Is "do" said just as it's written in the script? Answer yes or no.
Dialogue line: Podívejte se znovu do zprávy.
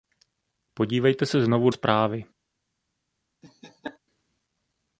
no